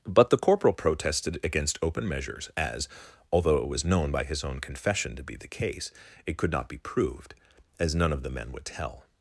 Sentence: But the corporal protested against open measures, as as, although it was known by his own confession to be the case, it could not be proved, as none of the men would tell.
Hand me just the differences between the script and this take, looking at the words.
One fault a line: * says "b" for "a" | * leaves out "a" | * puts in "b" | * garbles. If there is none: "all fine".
* leaves out "as"